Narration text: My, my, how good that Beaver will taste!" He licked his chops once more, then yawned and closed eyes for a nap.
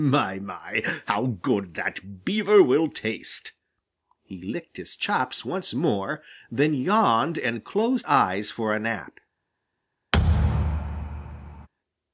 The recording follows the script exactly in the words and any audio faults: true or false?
false